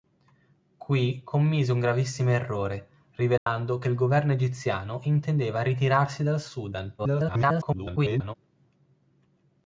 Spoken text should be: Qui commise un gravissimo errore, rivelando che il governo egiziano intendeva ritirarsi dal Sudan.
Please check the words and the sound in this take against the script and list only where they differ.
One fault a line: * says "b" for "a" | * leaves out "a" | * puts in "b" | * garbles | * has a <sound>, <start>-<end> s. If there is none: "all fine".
* has a dropout, 3.4-3.5 s
* garbles